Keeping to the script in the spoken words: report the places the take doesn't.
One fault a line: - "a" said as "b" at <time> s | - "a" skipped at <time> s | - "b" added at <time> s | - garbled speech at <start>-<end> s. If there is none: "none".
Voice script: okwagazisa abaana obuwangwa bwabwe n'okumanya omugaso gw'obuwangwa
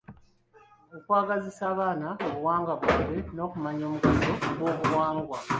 none